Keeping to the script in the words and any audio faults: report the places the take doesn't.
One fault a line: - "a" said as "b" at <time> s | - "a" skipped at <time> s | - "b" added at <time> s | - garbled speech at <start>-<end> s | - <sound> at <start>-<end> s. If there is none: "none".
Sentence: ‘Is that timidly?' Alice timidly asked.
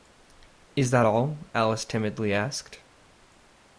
- "timidly" said as "all" at 1.0 s